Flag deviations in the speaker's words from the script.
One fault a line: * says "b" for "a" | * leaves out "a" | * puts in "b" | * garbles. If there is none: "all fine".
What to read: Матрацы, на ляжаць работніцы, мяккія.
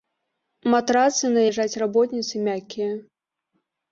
all fine